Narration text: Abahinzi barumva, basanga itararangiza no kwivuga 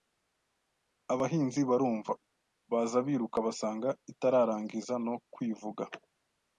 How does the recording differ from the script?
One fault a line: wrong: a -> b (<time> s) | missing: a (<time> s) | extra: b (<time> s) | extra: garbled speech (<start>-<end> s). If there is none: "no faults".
extra: baza biruka (2.7 s)